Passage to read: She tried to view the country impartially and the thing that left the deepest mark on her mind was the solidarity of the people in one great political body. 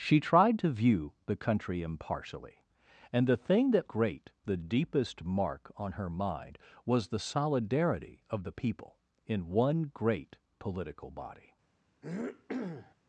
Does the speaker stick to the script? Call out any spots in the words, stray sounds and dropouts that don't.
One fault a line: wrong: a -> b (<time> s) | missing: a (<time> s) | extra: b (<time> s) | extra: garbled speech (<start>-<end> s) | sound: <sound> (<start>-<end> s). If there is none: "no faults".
wrong: left -> great (3.9 s)
sound: throat clearing (12.0-12.9 s)